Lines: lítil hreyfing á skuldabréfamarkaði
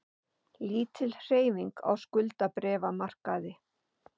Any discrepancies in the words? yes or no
no